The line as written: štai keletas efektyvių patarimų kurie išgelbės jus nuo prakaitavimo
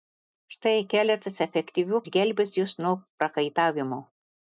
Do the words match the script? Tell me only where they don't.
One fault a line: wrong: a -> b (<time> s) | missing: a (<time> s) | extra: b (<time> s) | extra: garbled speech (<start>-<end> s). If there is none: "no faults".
missing: patarimų kurie (2.0 s)